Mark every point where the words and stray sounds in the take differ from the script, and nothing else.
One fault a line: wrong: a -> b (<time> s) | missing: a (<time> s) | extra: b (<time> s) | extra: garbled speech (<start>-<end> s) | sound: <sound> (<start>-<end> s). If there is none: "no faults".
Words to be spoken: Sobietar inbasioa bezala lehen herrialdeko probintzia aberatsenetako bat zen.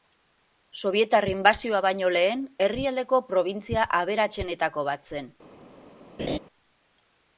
wrong: bezala -> baino (1.9 s)
sound: laugh (6.2-6.4 s)